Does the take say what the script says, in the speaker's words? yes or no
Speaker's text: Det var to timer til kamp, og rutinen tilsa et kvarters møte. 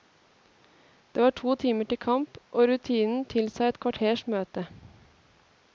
yes